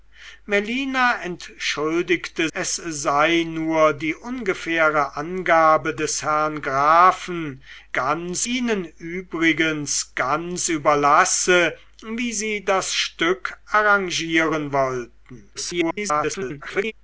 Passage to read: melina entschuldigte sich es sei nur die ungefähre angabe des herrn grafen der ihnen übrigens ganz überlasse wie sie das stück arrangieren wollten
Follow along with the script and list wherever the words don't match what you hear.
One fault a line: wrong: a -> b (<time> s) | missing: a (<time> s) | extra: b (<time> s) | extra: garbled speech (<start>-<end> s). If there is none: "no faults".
missing: sich (2.5 s)
wrong: der -> ganz (7.9 s)
extra: garbled speech (15.5-16.9 s)